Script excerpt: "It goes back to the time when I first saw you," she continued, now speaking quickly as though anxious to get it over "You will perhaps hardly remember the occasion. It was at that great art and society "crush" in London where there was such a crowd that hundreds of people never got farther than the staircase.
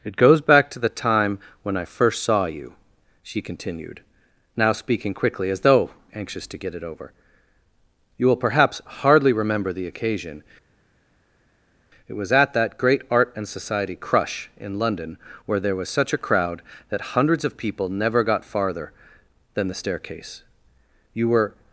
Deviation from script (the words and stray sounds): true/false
true